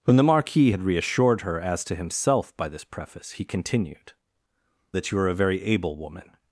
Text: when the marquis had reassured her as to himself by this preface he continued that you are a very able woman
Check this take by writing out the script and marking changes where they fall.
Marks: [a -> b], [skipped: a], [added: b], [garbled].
when the marquis had reassured her as to himself by this preface he continued that you are a very able woman